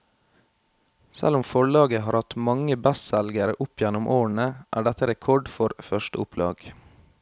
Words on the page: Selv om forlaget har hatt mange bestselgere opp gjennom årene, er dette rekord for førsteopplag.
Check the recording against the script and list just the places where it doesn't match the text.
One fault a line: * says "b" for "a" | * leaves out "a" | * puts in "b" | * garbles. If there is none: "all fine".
all fine